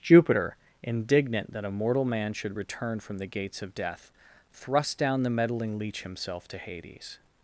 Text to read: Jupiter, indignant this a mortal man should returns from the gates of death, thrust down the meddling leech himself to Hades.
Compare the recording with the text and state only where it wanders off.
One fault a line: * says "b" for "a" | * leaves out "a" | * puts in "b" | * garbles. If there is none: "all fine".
* says "that" for "this"
* says "return" for "returns"